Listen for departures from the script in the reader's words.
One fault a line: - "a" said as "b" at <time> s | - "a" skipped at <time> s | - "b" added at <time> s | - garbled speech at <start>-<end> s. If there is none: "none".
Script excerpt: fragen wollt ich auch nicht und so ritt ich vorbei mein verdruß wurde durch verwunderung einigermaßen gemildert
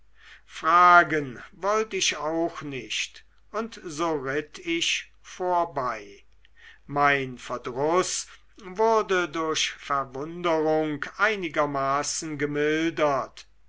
none